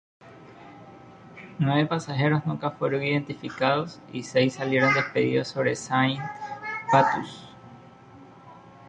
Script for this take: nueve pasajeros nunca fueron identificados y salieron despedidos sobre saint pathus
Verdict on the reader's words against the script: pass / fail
fail